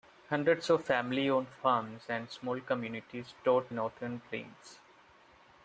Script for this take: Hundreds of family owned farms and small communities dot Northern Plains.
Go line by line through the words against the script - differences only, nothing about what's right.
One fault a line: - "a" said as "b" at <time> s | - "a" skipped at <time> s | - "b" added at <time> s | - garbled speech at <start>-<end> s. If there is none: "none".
none